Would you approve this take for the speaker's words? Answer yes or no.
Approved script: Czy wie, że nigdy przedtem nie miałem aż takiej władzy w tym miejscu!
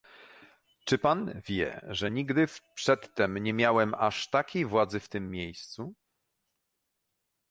no